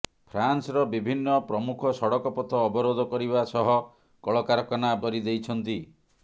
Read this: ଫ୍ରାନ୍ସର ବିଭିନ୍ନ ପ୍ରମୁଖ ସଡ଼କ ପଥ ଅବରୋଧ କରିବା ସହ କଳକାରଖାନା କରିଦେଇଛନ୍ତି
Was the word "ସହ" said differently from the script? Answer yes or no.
no